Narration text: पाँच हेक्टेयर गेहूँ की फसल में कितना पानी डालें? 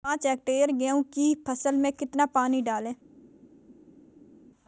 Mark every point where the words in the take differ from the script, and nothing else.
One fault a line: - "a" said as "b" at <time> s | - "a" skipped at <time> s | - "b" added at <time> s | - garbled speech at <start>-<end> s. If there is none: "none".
none